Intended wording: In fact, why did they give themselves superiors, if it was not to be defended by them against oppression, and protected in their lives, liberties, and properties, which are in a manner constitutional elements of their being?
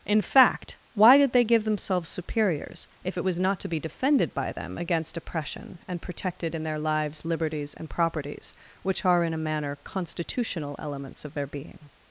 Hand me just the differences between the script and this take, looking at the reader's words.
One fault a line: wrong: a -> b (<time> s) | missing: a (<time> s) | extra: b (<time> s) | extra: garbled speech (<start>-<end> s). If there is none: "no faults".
no faults